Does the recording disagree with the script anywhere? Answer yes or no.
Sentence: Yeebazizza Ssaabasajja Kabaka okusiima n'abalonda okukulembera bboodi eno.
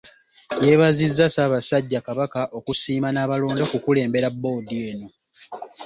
no